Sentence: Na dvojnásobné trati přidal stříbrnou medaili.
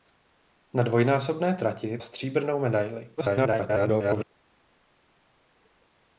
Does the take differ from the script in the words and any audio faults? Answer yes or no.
yes